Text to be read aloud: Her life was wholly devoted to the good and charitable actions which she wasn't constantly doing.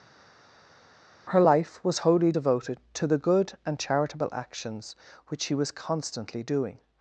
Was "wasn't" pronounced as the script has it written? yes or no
no